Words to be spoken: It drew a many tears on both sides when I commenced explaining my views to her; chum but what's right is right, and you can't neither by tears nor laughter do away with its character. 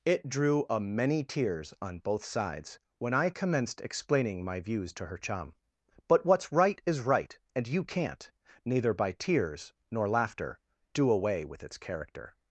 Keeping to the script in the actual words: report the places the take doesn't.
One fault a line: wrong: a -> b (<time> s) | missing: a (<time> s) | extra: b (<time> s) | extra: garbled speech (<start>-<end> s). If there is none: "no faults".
no faults